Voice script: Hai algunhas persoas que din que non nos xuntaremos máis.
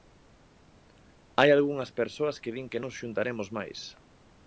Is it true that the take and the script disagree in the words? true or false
true